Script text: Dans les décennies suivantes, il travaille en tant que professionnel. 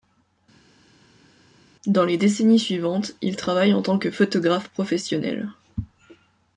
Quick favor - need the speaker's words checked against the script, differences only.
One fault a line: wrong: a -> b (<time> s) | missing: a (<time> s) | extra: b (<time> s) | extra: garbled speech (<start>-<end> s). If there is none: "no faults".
extra: photographe (4.1 s)